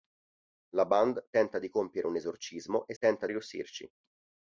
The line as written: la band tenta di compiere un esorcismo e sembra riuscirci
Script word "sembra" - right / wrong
wrong